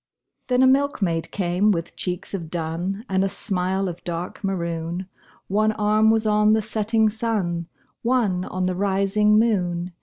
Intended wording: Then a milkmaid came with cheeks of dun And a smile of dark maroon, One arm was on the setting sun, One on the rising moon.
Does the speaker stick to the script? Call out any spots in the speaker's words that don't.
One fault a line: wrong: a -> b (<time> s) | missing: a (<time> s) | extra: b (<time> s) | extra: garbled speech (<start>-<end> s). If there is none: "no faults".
no faults